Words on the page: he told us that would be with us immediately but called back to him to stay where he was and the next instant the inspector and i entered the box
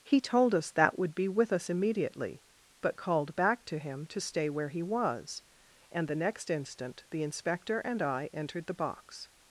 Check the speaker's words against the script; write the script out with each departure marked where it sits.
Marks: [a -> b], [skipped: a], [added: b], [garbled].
he told us that would be with us immediately but called back to him to stay where he was and the next instant the inspector and i entered the box